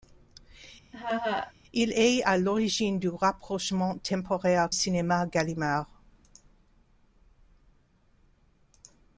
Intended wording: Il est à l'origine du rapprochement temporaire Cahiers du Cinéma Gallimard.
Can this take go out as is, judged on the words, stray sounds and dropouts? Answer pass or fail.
fail